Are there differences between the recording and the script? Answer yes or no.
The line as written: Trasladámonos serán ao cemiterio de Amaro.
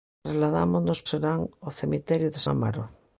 no